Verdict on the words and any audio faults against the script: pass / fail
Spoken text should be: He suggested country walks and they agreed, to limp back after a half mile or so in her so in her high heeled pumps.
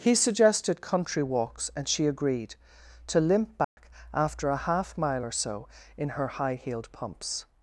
fail